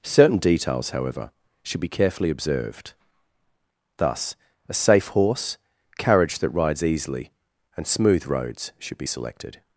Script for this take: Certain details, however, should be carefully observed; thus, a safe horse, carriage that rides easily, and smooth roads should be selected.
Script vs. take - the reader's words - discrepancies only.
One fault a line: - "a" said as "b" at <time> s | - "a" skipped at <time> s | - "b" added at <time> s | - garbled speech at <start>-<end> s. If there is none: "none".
none